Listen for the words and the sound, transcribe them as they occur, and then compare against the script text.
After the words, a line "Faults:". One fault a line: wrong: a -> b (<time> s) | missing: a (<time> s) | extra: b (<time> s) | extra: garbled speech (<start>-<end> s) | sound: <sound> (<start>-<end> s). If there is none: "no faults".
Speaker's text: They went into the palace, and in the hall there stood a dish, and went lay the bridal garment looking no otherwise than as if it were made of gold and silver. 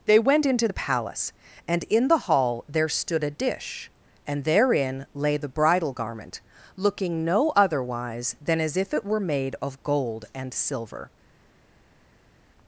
They went into the palace, and in the hall there stood a dish, and therein lay the bridal garment looking no otherwise than as if it were made of gold and silver.
Faults:
wrong: went -> therein (4.4 s)